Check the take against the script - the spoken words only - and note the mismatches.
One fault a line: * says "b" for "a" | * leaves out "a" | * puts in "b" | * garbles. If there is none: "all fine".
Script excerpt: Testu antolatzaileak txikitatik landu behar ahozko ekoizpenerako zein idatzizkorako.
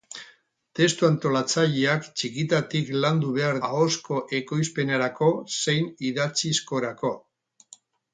all fine